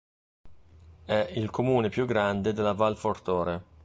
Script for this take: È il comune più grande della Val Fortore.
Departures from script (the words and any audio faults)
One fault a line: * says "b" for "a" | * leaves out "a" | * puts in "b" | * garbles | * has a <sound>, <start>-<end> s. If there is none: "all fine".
all fine